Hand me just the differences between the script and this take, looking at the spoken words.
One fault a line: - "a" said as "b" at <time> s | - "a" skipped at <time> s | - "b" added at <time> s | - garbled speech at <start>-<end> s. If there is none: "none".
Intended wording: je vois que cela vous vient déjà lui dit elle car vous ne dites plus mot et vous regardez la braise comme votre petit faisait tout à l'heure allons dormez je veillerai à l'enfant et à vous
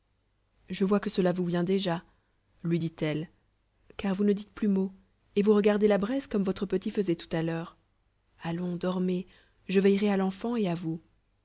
none